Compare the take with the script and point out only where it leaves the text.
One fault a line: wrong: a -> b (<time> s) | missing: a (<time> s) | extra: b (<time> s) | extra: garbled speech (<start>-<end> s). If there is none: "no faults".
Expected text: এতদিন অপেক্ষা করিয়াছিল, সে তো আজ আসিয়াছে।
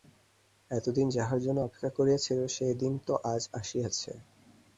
extra: যাহার জন্য (1.1 s)
extra: দিন (2.8 s)